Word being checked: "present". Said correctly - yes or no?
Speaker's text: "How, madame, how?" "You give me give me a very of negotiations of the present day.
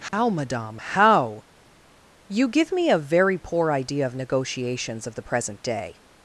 yes